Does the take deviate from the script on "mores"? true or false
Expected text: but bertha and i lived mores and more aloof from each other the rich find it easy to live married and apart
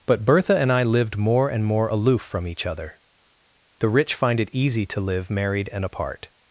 true